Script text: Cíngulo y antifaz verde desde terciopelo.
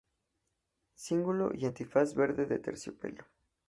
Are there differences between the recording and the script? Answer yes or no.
yes